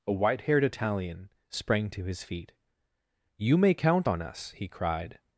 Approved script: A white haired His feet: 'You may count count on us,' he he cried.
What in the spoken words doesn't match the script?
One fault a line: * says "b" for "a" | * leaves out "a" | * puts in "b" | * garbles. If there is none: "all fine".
* puts in "Italian sprang to"
* leaves out "count"
* leaves out "he"